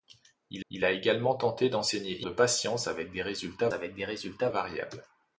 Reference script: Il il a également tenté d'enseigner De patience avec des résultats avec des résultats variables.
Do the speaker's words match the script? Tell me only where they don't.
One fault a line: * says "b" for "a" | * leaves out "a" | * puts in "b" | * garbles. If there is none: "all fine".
all fine